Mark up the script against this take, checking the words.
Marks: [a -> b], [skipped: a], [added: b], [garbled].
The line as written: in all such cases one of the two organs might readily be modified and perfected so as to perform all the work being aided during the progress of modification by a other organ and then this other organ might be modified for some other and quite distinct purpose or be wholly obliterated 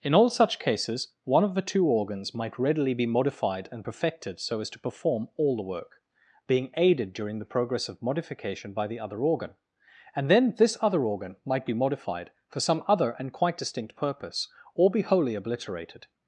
in all such cases one of the two organs might readily be modified and perfected so as to perform all the work being aided during the progress of modification by [a -> the] other organ and then this other organ might be modified for some other and quite distinct purpose or be wholly obliterated